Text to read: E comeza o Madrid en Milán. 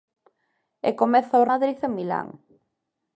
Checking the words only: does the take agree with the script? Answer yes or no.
yes